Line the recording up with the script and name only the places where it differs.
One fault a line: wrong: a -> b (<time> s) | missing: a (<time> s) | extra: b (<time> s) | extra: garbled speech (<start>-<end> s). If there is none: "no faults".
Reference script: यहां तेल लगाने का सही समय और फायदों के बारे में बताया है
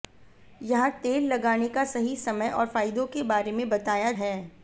no faults